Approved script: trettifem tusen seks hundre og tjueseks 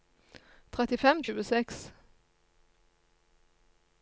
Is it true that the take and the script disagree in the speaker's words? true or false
true